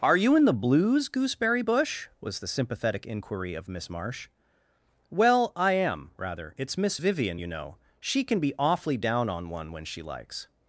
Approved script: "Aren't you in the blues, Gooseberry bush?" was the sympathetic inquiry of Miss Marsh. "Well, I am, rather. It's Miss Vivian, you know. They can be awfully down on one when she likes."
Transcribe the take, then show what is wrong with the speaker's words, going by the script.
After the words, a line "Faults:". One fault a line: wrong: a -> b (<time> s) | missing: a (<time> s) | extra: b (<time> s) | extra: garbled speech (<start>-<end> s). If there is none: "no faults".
"Are you in the blues, Gooseberry bush?" was the sympathetic inquiry of Miss Marsh. "Well, I am, rather. It's Miss Vivian, you know. She can be awfully down on one when she likes."
Faults:
wrong: Aren't -> Are (0.0 s)
wrong: They -> She (8.0 s)